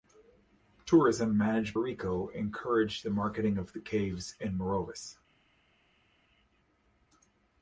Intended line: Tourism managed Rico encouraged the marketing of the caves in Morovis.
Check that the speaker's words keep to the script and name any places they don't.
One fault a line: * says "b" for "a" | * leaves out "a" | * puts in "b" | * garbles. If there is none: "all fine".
all fine